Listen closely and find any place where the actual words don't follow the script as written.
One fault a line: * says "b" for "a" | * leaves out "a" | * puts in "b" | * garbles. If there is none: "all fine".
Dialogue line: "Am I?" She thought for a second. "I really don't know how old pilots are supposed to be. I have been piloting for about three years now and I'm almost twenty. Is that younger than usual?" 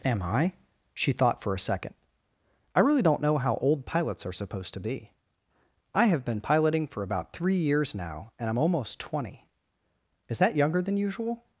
all fine